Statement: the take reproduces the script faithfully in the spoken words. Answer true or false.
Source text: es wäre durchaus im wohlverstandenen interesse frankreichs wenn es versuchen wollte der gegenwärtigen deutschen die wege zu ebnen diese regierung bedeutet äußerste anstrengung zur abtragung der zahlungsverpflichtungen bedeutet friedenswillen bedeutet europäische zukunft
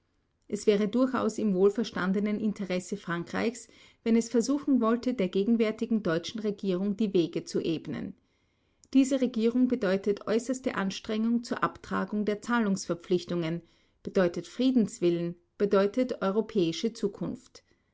false